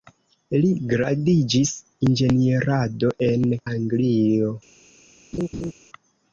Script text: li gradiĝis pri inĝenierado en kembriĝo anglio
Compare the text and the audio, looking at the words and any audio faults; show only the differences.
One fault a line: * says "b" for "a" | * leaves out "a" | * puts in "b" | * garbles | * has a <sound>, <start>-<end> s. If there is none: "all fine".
* leaves out "pri"
* leaves out "kembriĝo"
* has a laugh, 5.3-5.7 s